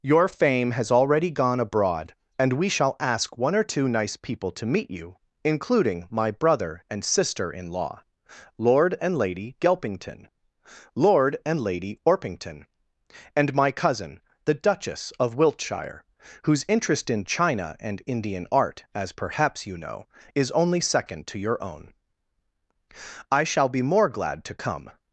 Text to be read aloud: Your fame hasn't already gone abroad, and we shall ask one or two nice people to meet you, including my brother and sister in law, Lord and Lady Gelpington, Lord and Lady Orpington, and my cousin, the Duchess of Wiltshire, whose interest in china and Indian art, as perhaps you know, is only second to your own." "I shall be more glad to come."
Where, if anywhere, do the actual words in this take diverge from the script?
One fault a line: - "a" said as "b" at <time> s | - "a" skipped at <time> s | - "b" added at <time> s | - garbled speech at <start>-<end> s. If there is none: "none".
- "hasn't" said as "has" at 0.7 s